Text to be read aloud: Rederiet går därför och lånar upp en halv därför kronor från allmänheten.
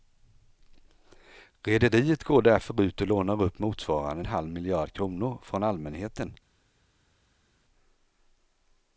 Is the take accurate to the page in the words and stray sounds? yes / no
no